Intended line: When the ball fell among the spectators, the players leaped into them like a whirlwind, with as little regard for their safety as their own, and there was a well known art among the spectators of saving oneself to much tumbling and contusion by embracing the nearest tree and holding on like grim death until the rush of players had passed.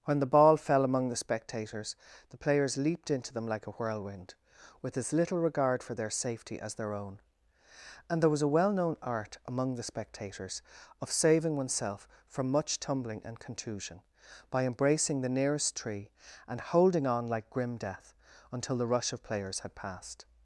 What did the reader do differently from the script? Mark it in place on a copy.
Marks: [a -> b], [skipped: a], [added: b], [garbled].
When the ball fell among the spectators, the players leaped into them like a whirlwind, with as little regard for their safety as their own, and there was a well known art among the spectators of saving oneself [to -> from] much tumbling and contusion by embracing the nearest tree and holding on like grim death until the rush of players had passed.